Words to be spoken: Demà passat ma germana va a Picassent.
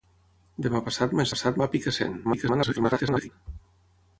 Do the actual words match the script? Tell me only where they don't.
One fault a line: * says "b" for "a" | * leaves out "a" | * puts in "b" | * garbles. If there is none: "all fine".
* says "passat" for "germana"
* garbles